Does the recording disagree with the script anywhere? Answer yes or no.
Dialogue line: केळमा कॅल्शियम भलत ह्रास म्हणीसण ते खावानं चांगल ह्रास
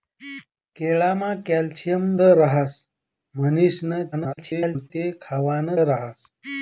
yes